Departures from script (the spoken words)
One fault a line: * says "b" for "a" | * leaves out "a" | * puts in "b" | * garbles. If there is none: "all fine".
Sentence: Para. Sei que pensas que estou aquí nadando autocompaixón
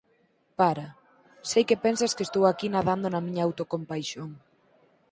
* puts in "na miña"